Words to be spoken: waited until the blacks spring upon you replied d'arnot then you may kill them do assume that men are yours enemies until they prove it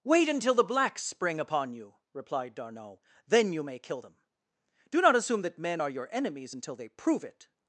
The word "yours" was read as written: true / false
false